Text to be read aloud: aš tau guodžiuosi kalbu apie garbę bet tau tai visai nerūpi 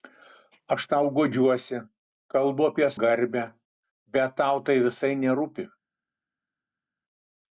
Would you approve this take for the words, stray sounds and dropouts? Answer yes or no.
yes